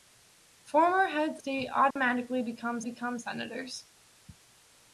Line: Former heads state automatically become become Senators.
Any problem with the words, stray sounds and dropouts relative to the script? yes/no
yes